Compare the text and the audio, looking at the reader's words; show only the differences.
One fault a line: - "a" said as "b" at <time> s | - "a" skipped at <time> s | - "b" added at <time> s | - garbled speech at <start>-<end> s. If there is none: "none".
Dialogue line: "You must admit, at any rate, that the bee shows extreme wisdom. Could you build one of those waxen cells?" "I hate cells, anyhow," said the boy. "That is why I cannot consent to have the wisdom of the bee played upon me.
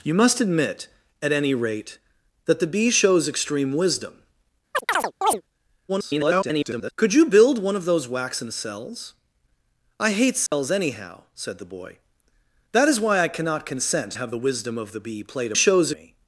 - garbled speech at 5.9-6.9 s
- "to" skipped at 14.1 s
- "upon" said as "shows" at 15.5 s